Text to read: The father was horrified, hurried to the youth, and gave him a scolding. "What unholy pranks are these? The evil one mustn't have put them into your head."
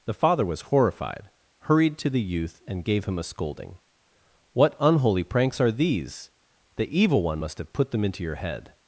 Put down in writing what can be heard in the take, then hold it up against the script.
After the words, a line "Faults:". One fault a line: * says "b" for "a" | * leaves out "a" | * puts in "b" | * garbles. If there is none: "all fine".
The father was horrified, hurried to the youth, and gave him a scolding. "What unholy pranks are these? The evil one must have put them into your head."
Faults:
* says "must" for "mustn't"